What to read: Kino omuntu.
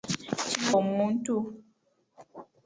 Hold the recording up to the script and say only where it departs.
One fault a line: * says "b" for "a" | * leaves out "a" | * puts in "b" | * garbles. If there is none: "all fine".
all fine